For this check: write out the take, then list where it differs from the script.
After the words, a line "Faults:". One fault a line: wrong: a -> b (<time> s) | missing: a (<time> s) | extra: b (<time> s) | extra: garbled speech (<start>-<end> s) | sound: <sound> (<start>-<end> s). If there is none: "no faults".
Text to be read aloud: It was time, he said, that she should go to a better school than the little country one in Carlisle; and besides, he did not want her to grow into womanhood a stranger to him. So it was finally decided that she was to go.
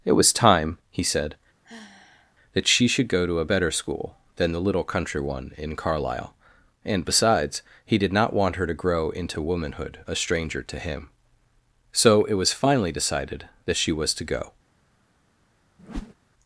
It was time, he said, that she should go to a better school than the little country one in Carlisle; and besides, he did not want her to grow into womanhood a stranger to him. So it was finally decided that she was to go.
Faults:
sound: sigh (1.6-2.3 s)
sound: whoosh (15.8-16.1 s)